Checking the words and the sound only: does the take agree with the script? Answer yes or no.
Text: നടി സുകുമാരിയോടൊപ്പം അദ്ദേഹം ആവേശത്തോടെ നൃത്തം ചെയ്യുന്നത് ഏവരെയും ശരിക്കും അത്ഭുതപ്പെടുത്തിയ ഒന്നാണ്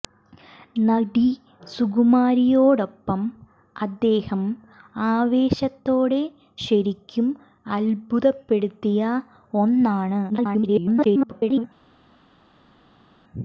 no